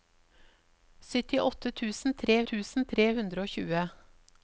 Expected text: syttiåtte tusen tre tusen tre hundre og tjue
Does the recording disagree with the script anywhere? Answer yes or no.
no